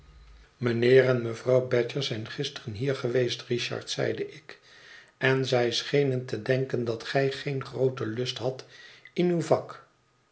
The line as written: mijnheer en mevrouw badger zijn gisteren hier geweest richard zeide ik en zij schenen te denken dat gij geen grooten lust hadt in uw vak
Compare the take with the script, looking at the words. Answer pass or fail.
pass